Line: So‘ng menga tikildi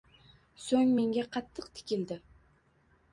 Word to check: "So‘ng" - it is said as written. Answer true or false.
true